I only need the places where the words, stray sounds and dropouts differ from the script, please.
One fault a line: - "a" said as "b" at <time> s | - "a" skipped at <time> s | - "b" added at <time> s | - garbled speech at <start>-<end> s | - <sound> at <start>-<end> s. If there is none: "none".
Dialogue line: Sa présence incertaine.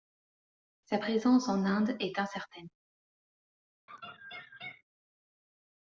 - "en Inde est" added at 1.5 s
- laugh at 3.9-4.8 s